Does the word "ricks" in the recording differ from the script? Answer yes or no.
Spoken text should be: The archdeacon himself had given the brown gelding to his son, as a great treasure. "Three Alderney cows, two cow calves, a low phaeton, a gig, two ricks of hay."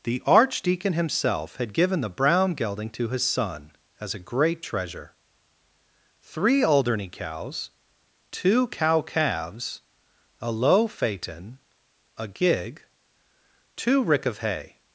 yes